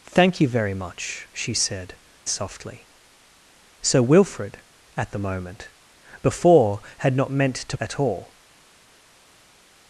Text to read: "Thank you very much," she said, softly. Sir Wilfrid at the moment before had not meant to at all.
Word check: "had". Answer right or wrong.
right